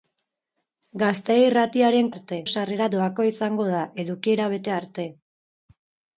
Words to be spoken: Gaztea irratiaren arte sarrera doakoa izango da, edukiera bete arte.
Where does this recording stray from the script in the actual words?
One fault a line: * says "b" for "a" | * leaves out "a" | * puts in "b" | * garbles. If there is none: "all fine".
all fine